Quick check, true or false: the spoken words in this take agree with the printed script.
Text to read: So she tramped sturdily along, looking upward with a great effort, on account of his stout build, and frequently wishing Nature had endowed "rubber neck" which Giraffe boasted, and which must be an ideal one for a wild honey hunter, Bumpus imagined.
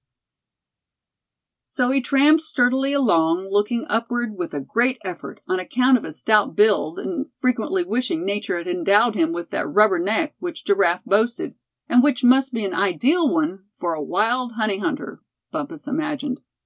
false